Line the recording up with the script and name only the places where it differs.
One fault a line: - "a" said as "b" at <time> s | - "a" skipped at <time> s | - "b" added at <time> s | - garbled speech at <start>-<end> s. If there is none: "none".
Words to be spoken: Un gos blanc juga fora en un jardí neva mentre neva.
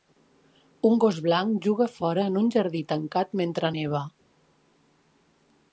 - "neva" said as "tancat" at 2.9 s